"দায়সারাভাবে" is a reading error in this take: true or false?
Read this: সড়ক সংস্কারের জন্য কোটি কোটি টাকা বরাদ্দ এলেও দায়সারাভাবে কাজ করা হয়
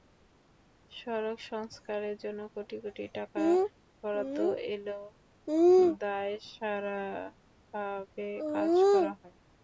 false